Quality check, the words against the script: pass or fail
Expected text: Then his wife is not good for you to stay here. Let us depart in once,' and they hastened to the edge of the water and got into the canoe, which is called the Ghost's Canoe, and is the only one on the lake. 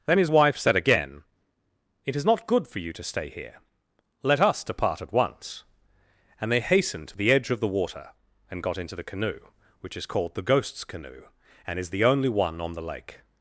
fail